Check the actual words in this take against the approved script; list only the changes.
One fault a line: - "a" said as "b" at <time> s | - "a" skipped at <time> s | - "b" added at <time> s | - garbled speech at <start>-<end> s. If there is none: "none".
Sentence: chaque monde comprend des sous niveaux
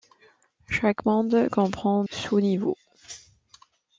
- "des" skipped at 2.0 s